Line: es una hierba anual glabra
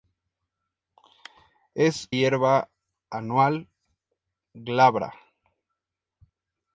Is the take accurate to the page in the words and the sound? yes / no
no